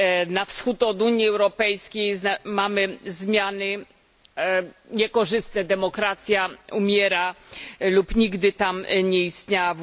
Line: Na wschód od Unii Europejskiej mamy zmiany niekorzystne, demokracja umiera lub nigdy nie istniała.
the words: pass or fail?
fail